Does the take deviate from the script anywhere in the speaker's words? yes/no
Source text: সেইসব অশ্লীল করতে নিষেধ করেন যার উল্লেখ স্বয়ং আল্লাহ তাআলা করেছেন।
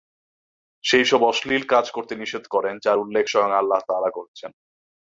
yes